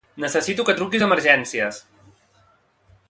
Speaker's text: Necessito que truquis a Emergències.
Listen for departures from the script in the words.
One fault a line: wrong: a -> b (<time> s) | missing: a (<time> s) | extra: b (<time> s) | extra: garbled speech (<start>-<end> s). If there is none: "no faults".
no faults